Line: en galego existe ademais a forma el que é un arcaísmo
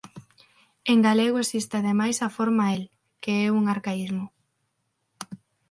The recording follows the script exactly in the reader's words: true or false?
true